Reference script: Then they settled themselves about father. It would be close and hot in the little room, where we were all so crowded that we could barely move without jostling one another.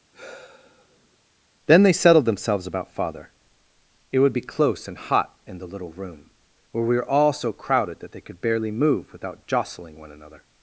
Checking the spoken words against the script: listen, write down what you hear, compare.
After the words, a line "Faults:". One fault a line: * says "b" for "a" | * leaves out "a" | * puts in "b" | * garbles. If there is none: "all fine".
Then they settled themselves about father. It would be close and hot in the little room, where we were all so crowded that they could barely move without jostling one another.
Faults:
* says "they" for "we"